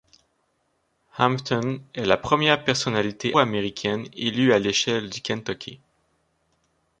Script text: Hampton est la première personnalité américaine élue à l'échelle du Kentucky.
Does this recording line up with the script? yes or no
yes